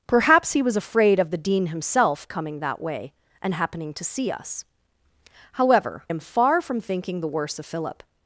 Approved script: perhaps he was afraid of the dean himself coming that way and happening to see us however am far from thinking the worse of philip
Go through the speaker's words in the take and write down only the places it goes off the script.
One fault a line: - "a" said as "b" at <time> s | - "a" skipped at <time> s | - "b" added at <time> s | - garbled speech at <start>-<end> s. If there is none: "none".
none